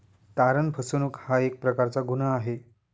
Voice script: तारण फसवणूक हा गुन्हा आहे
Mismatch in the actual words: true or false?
true